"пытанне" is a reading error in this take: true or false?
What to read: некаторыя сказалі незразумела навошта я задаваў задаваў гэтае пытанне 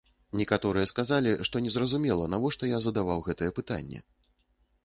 false